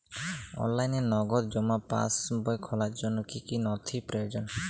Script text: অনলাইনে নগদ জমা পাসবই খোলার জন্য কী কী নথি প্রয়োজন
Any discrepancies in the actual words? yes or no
no